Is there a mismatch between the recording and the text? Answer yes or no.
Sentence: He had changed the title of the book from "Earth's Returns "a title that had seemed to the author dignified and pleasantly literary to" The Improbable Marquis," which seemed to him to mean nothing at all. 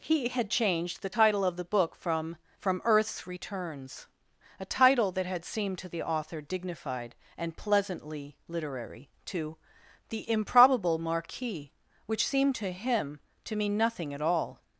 yes